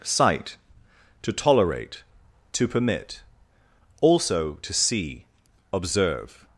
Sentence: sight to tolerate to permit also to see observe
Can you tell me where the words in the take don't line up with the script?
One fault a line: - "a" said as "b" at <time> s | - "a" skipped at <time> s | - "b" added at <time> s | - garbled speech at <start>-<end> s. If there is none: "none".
none